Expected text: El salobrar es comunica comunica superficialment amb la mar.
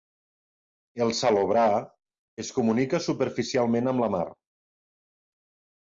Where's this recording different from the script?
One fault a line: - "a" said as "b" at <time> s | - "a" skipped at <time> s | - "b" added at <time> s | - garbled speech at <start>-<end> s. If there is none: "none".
- "comunica" skipped at 3.0 s